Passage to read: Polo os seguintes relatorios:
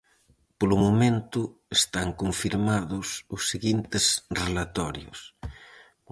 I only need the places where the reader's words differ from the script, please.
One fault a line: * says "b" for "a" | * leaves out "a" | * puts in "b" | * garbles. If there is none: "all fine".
* puts in "momento están confirmados"